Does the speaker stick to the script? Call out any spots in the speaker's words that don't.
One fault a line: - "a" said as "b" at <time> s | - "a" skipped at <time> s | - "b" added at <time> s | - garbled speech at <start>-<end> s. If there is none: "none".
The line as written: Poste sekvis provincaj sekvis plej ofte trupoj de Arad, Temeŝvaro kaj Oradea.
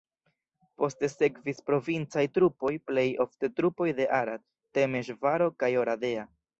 - "sekvis" said as "trupoj" at 2.4 s